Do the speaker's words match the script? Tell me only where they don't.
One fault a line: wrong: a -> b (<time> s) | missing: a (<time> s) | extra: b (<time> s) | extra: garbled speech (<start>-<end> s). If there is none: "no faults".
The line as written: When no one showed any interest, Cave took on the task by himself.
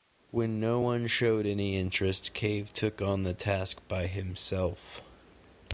no faults